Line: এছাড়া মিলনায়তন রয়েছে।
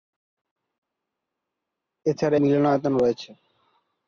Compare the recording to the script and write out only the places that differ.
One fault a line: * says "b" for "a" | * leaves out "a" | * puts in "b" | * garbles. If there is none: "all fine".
all fine